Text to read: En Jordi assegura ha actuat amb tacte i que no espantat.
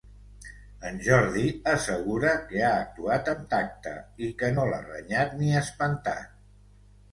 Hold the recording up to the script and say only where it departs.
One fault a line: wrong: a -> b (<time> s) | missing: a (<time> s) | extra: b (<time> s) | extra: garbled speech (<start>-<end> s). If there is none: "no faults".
extra: que (2.5 s)
extra: l'ha renyat ni (4.7 s)